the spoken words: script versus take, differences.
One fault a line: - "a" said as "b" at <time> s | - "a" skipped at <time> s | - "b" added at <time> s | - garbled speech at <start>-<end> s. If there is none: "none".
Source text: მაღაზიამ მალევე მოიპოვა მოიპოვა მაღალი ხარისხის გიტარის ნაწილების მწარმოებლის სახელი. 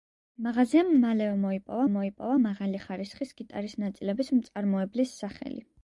none